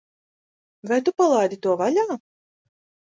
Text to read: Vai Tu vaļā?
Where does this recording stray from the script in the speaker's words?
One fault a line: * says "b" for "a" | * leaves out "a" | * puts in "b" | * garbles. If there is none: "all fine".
* puts in "palaidi to"